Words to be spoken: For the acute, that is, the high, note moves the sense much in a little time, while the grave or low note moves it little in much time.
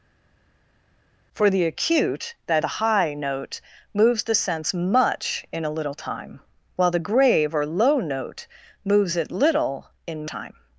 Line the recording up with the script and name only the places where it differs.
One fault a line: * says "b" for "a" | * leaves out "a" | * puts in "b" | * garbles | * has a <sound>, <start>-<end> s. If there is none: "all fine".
* leaves out "is"
* leaves out "much"